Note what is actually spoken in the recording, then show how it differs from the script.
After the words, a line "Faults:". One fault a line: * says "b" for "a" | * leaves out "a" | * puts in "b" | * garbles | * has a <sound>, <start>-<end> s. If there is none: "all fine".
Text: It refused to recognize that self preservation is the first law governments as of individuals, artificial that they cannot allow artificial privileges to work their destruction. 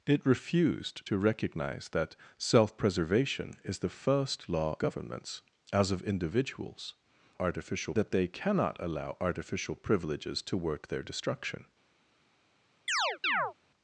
It refused to recognize that self preservation is the first law governments as of individuals, artificial that they cannot allow artificial privileges to work their destruction.
Faults:
* has a chirp, 12.9-13.5 s